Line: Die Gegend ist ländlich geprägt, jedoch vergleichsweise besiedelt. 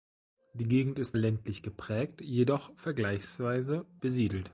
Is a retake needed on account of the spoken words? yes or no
no